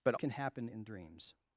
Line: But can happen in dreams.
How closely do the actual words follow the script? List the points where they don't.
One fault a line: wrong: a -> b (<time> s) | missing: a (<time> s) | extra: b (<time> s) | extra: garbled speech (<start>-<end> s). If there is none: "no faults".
no faults